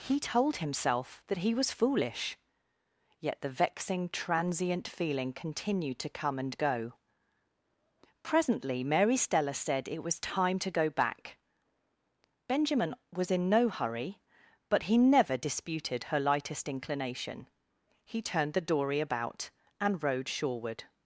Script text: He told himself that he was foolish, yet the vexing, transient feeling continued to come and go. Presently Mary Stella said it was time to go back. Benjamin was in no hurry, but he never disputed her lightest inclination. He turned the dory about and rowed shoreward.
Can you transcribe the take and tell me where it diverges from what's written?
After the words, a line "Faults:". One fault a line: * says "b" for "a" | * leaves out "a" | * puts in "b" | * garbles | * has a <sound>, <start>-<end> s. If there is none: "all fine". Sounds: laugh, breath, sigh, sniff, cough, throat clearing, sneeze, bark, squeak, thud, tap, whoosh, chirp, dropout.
He told himself that he was foolish, yet the vexing, transient feeling continued to come and go. Presently Mary Stella said it was time to go back. Benjamin was in no hurry, but he never disputed her lightest inclination. He turned the dory about and rowed shoreward.
Faults:
all fine